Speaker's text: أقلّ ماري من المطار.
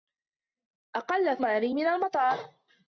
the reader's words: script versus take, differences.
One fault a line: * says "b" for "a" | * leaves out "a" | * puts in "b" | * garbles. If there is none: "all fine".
all fine